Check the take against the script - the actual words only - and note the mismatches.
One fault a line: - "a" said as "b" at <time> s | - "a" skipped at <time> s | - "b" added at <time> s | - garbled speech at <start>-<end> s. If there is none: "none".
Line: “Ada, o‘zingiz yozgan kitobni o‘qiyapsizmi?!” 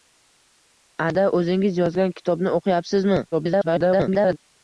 - garbled speech at 3.3-4.4 s